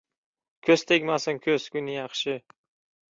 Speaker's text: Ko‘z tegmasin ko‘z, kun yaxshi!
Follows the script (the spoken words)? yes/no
yes